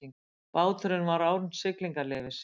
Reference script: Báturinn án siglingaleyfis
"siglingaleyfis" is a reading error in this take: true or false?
false